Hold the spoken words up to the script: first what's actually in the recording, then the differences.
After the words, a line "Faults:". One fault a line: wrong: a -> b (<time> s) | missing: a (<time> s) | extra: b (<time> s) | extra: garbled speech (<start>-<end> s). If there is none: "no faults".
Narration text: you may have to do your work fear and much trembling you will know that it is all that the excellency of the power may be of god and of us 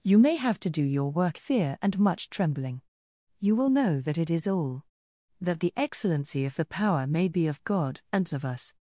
you may have to do your work fear and much trembling you will know that it is all that the excellency of the power may be of god and of us
Faults:
no faults